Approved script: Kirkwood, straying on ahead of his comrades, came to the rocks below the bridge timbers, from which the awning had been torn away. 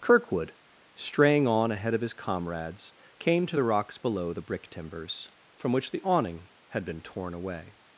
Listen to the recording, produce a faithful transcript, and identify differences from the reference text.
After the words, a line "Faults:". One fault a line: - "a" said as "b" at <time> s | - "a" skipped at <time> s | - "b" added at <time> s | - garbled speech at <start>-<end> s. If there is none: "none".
Kirkwood, straying on ahead of his comrades, came to the rocks below the brick timbers, from which the awning had been torn away.
Faults:
- "bridge" said as "brick" at 4.4 s